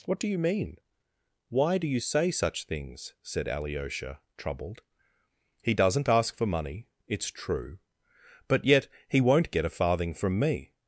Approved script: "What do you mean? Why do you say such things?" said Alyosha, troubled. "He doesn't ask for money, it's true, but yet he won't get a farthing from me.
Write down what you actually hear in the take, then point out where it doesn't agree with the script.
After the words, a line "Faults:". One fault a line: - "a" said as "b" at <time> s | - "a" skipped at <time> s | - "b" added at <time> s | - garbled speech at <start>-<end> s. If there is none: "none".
"What do you mean? Why do you say such things?" said Alyosha, troubled. "He doesn't ask for money, it's true, but yet he won't get a farthing from me.
Faults:
none